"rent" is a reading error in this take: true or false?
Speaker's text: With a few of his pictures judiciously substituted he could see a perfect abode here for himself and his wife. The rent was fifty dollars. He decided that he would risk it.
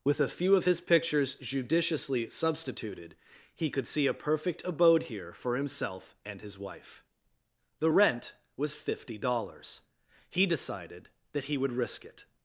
false